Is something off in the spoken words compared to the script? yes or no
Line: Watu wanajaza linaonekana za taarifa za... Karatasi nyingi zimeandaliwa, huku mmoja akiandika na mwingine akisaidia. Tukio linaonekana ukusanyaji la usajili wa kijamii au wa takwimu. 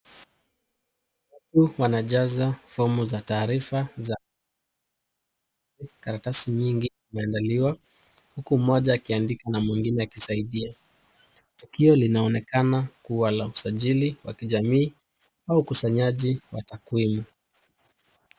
yes